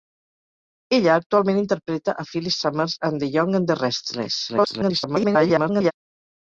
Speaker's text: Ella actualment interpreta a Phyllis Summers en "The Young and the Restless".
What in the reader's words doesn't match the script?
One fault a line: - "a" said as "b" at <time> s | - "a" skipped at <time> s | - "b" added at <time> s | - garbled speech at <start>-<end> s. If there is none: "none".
- garbled speech at 4.5-5.9 s